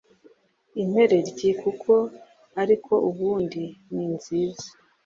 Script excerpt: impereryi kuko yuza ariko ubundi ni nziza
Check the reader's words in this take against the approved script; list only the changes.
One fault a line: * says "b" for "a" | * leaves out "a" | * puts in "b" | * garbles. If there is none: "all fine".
* leaves out "yuza"